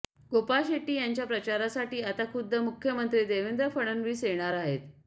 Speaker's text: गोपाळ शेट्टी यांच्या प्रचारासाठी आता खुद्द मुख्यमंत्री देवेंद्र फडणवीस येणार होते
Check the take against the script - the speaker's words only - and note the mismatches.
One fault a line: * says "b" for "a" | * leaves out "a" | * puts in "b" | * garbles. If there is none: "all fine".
* says "आहेत" for "होते"